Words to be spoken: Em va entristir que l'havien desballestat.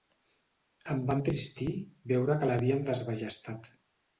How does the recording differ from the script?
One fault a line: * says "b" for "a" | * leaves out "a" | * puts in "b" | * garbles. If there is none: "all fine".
* puts in "veure"